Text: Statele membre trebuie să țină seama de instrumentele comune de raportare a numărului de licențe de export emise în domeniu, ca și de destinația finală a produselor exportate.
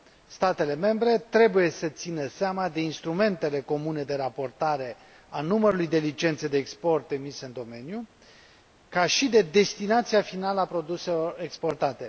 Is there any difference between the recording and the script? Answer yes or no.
no